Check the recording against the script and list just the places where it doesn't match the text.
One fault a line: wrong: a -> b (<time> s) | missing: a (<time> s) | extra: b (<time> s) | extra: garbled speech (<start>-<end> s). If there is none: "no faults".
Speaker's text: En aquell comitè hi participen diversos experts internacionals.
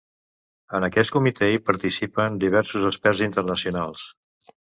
wrong: aquell -> aquest (0.9 s)